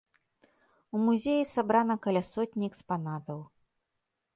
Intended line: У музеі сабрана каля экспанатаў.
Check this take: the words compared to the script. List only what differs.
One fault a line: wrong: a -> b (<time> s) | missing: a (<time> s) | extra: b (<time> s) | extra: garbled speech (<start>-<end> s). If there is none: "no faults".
extra: сотні (2.3 s)